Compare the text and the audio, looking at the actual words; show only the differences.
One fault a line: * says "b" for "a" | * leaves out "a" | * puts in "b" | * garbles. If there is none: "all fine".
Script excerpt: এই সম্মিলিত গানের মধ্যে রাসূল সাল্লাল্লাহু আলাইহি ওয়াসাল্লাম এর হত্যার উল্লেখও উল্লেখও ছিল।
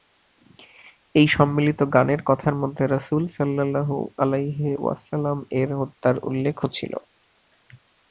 * puts in "কথার"
* leaves out "উল্লেখও"